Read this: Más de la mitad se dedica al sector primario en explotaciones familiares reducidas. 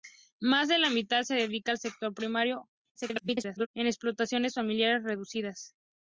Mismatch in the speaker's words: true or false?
true